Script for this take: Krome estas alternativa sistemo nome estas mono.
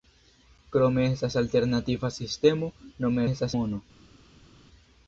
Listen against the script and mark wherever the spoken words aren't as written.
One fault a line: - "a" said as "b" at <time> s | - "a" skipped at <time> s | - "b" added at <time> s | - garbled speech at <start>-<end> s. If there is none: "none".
none